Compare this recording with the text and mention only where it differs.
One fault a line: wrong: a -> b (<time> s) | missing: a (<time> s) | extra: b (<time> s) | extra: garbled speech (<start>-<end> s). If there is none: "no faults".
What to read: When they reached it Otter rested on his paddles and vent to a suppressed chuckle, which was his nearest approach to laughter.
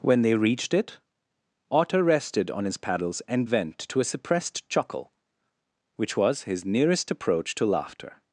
no faults